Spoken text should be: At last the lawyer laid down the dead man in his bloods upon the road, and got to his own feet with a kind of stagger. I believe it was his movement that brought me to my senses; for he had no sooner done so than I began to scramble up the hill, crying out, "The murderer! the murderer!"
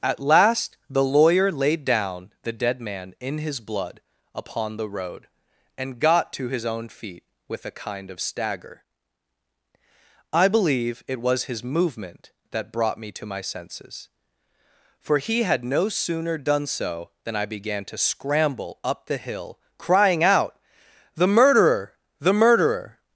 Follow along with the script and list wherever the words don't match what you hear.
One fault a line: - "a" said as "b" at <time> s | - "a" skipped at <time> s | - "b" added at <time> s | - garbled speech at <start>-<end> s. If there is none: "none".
- "bloods" said as "blood" at 3.6 s